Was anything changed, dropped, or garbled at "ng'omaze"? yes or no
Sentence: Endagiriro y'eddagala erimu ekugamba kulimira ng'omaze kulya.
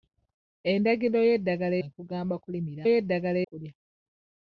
yes